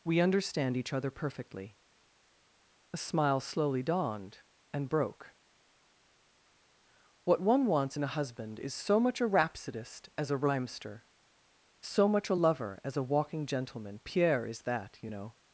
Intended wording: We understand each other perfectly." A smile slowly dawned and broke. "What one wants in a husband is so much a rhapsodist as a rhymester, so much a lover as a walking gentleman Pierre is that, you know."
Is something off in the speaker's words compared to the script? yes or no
no